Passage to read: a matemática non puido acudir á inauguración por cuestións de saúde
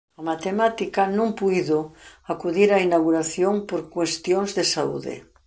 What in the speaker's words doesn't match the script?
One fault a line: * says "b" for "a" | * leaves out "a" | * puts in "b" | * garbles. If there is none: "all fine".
all fine